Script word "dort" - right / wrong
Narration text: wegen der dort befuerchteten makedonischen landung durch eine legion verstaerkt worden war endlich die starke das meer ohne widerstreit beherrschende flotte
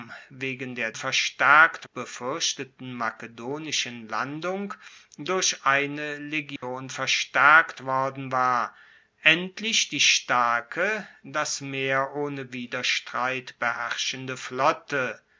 wrong